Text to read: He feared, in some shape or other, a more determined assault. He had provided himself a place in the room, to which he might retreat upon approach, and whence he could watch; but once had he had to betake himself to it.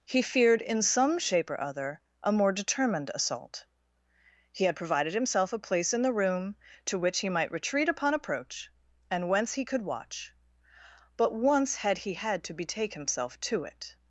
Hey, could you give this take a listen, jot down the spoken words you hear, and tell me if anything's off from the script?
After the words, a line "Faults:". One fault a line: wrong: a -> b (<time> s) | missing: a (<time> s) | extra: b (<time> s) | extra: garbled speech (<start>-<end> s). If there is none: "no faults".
He feared, in some shape or other, a more determined assault. He had provided himself a place in the room, to which he might retreat upon approach, and whence he could watch; but once had he had to betake himself to it.
Faults:
no faults